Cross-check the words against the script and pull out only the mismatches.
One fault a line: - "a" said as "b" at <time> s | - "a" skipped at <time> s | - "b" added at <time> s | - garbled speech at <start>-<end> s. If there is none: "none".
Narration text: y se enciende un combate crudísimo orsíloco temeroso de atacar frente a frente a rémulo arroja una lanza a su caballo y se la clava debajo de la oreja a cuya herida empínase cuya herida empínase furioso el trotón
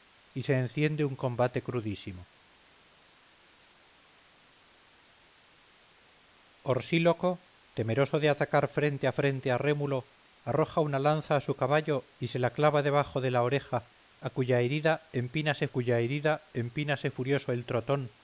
none